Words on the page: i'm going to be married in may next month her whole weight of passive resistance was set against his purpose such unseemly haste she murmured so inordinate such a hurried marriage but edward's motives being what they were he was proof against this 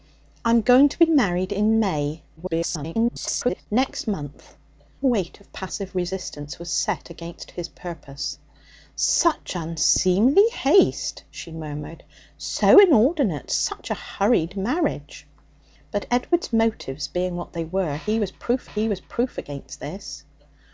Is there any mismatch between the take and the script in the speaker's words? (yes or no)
yes